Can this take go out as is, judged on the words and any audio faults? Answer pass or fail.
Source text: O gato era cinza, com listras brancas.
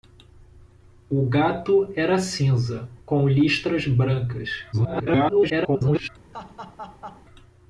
fail